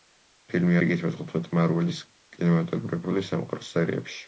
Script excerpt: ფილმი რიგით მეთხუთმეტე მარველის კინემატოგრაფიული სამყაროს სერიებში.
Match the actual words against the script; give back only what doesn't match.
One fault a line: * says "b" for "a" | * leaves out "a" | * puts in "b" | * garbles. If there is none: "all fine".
all fine